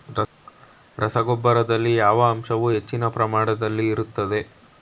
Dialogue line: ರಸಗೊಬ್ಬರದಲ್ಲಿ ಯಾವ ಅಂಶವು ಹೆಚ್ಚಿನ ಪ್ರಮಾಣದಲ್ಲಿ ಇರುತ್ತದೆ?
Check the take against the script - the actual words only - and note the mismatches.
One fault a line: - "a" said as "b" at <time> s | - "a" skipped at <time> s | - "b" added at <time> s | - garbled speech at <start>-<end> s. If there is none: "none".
none